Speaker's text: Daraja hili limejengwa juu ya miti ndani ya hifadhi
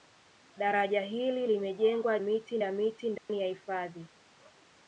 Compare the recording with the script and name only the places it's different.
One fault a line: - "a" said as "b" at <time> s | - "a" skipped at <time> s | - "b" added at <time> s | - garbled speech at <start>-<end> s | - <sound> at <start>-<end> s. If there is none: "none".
- "juu" said as "miti" at 2.2 s
- dropout at 3.2-3.3 s